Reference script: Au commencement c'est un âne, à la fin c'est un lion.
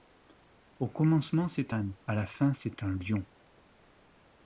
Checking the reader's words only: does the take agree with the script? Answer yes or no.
no